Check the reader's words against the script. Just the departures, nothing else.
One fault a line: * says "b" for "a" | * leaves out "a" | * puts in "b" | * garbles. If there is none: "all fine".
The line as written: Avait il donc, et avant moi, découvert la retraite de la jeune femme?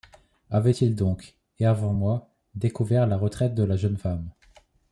all fine